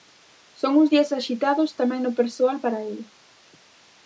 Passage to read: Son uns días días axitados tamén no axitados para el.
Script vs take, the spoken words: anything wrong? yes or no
yes